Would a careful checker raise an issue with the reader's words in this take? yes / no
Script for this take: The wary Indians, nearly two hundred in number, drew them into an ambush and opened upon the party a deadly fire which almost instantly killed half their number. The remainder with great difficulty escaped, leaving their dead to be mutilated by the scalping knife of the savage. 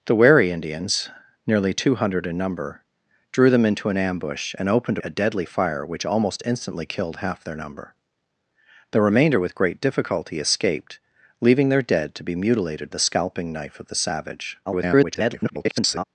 yes